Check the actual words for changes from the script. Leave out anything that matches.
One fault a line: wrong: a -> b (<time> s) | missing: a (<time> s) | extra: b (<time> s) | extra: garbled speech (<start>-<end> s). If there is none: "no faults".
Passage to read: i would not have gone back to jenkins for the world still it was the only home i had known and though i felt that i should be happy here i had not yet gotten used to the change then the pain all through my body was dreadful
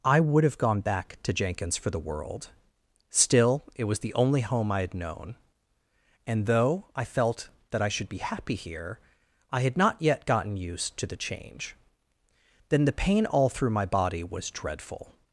missing: not (0.4 s)